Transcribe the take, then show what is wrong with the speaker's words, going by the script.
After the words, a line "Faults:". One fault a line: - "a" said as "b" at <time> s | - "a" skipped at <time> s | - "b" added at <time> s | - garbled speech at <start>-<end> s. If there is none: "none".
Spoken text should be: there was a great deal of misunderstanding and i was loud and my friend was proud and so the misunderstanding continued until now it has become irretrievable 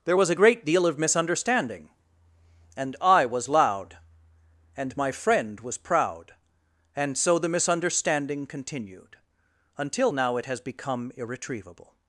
there was a great deal of misunderstanding and i was loud and my friend was proud and so the misunderstanding continued until now it has become irretrievable
Faults:
none